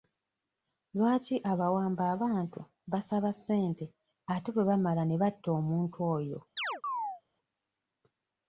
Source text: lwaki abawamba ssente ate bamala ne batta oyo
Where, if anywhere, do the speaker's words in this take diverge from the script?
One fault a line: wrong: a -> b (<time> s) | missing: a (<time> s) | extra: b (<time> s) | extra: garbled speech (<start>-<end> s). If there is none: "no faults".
extra: abantu basaba (2.1 s)
extra: bwe (4.5 s)
extra: omuntu (5.6 s)